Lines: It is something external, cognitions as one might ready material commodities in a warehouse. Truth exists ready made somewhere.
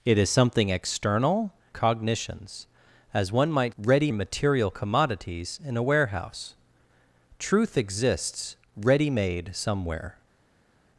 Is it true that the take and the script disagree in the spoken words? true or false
false